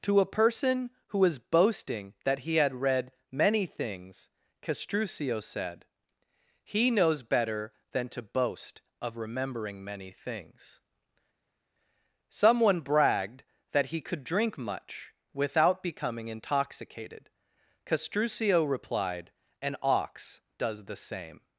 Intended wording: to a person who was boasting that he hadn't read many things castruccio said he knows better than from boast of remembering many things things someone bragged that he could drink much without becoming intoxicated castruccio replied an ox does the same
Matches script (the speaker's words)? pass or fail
fail